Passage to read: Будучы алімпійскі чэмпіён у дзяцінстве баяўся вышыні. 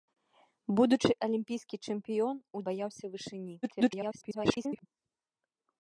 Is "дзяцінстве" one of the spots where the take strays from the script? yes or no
yes